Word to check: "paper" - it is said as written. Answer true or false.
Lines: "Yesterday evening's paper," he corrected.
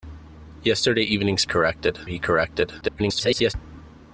false